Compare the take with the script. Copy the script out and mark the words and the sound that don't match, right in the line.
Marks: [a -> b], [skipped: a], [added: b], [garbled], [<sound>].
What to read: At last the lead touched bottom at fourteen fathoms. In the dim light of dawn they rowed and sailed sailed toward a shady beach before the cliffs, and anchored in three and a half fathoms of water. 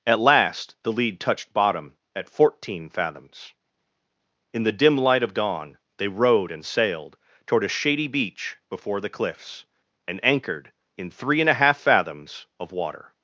At last the lead touched bottom at fourteen fathoms. In the dim light of dawn they rowed and sailed [skipped: sailed] toward a shady beach before the cliffs, and anchored in three and a half fathoms of water.